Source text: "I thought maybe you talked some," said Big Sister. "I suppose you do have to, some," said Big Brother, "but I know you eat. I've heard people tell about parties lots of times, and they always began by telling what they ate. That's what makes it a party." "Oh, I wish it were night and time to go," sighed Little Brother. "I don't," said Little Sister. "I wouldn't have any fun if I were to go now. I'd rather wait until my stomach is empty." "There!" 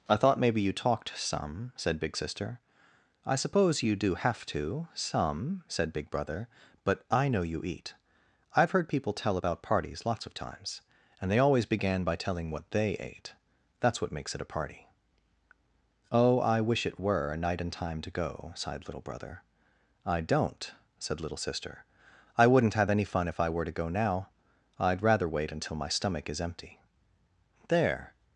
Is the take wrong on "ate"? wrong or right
right